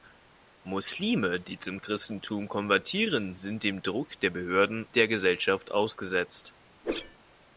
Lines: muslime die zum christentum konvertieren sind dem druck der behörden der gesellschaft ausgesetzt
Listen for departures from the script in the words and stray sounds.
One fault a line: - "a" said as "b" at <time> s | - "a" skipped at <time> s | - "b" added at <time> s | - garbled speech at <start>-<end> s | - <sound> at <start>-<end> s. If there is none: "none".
- whoosh at 6.8-7.2 s